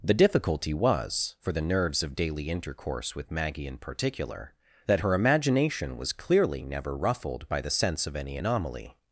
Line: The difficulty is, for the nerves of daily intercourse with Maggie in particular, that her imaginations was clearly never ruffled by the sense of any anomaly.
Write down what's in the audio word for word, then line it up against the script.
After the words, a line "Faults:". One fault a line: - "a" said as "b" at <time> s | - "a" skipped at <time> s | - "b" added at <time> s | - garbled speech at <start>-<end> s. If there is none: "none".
The difficulty was, for the nerves of daily intercourse with Maggie in particular, that her imagination was clearly never ruffled by the sense of any anomaly.
Faults:
- "is" said as "was" at 0.7 s
- "imaginations" said as "imagination" at 5.1 s